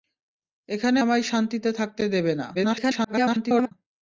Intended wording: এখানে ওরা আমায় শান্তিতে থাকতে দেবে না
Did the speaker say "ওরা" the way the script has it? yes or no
no